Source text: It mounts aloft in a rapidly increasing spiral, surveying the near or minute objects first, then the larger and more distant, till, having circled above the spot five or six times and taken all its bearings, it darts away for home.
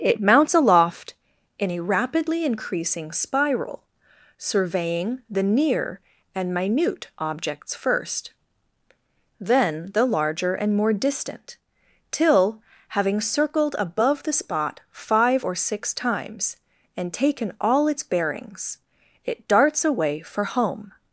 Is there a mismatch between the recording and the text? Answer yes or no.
yes